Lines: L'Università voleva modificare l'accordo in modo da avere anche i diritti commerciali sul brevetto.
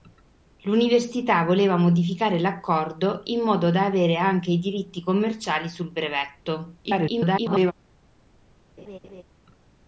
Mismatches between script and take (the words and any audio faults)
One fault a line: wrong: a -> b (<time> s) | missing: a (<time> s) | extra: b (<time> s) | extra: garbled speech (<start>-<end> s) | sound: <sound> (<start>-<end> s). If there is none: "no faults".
extra: garbled speech (6.8-7.7 s)
sound: laugh (8.8-9.2 s)